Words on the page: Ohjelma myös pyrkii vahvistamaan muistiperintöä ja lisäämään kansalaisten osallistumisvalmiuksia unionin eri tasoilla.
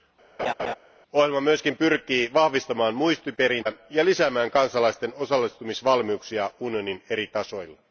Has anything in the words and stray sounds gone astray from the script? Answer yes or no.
yes